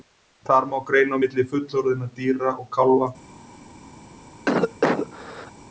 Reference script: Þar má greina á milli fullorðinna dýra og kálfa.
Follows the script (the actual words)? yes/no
yes